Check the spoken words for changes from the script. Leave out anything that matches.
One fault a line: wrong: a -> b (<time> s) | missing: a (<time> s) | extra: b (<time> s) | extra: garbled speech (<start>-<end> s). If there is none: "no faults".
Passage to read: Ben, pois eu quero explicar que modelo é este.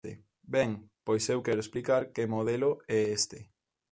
no faults